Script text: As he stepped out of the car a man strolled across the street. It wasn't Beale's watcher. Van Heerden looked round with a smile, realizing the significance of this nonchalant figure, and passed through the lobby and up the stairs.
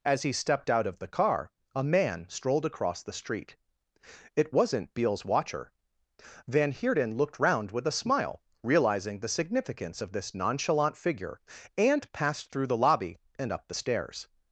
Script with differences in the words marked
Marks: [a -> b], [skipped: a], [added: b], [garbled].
As he stepped out of the car a man strolled across the street. It wasn't Beale's watcher. Van Heerden looked round with a smile, realizing the significance of this nonchalant figure, and passed through the lobby and up the stairs.